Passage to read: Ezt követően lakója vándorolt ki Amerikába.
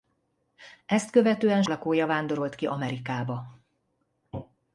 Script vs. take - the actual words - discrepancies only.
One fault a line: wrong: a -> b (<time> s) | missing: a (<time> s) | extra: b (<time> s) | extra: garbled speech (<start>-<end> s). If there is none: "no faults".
no faults